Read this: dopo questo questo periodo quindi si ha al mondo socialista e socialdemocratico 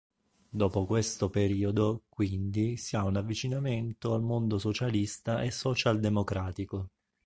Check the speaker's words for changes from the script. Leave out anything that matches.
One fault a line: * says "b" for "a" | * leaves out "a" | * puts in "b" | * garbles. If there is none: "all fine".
* leaves out "questo"
* puts in "un avvicinamento"